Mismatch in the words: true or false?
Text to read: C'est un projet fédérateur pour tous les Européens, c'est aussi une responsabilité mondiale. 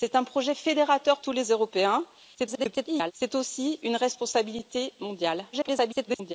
true